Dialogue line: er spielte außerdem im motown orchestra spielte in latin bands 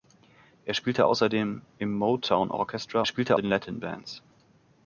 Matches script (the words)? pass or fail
pass